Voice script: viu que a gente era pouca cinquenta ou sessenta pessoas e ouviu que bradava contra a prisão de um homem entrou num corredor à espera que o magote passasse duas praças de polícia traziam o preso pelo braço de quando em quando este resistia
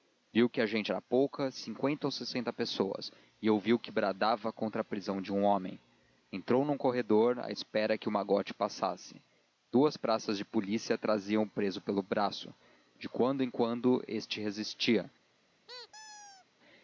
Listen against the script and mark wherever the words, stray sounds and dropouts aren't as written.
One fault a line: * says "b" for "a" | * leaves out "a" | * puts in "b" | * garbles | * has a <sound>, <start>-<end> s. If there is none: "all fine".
* has a squeak, 15.7-16.5 s